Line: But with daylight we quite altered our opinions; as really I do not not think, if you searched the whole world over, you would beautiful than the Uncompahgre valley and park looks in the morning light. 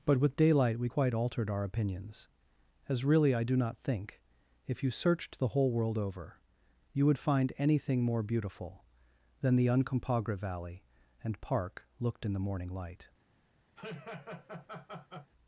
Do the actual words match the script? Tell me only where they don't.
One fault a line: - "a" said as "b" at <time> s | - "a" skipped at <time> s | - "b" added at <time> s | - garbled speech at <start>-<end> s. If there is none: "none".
- "not" skipped at 3.8 s
- "find anything more" added at 7.2 s
- "looks" said as "looked" at 12.0 s